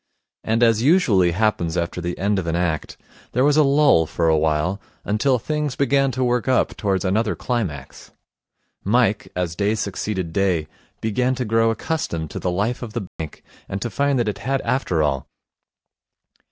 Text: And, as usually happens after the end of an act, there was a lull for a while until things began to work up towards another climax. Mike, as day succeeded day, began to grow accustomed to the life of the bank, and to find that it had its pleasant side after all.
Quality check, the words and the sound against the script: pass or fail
fail